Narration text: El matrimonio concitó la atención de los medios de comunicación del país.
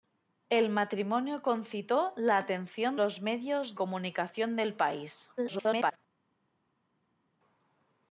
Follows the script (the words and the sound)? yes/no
no